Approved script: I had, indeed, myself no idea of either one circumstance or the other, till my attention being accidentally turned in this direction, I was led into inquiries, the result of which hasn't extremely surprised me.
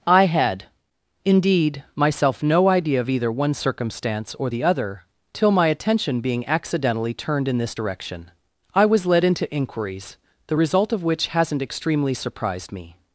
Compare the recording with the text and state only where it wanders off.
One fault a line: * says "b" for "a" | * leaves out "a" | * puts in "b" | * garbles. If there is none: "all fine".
all fine